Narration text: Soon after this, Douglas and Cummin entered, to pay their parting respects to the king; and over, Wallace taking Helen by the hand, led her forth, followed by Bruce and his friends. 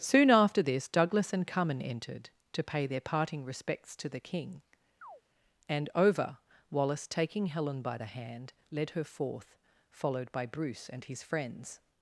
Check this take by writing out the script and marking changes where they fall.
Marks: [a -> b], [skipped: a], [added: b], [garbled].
Soon after this, Douglas and Cummin entered, to pay their parting respects to the king; and over, Wallace taking Helen by the hand, led her forth, followed by Bruce and his friends.